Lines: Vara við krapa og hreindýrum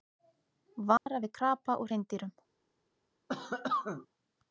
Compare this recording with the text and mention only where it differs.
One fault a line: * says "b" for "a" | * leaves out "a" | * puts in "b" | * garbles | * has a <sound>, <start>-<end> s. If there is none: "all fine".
* has a dropout, 1.0-1.1 s
* has a cough, 3.3-4.1 s